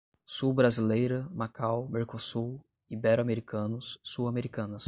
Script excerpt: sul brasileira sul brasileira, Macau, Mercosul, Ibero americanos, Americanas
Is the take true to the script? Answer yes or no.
no